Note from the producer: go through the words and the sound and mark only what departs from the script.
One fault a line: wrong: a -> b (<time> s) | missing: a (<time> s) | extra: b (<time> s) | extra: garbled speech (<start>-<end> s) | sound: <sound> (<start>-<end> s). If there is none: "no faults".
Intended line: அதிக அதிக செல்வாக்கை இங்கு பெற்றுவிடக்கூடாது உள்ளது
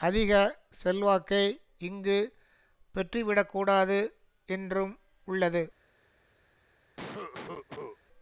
missing: அதிக (0.3 s)
extra: என்றும் (4.5 s)
sound: cough (7.0-8.0 s)